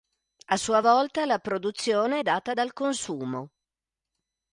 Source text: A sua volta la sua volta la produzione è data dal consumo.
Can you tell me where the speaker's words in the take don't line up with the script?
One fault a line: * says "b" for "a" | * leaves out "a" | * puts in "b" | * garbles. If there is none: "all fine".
* leaves out "sua volta la"